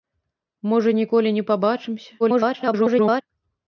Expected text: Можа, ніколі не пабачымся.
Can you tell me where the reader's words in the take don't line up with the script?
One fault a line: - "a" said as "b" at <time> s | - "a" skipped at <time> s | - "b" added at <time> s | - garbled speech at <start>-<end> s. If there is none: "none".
- garbled speech at 2.2-3.2 s